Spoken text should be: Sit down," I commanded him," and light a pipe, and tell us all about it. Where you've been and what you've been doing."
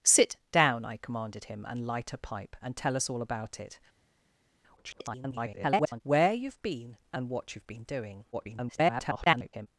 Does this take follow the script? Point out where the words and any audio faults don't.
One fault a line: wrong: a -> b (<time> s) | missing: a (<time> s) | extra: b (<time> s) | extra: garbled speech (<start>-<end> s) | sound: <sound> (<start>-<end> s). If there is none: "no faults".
extra: garbled speech (4.8-6.0 s)
extra: garbled speech (8.3-9.7 s)